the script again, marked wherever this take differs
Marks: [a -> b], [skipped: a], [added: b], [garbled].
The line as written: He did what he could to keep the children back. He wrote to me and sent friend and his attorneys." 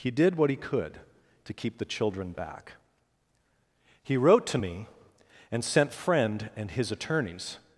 He did what he could to keep the children back. He wrote to me and sent friend and his attorneys."